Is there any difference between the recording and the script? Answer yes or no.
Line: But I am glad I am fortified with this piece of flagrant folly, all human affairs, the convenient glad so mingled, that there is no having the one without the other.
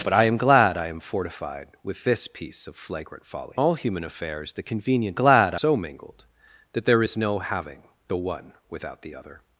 no